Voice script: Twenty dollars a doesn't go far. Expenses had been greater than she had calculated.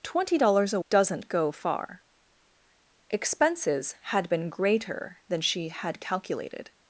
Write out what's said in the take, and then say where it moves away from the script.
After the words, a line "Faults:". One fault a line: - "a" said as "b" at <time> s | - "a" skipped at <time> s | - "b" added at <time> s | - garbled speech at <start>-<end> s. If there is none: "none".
Twenty dollars a doesn't go far. Expenses had been greater than she had calculated.
Faults:
none